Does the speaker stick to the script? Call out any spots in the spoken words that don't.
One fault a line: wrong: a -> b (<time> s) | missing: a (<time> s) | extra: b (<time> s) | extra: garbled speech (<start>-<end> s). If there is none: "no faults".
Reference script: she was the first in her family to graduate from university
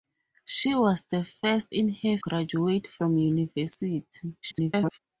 missing: family to (2.2 s)
extra: garbled speech (4.4-5.0 s)